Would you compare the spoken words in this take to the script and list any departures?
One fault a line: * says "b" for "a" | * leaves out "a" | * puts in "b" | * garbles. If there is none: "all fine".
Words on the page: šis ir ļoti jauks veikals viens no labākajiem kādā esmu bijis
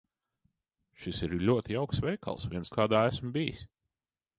* leaves out "no labākajiem"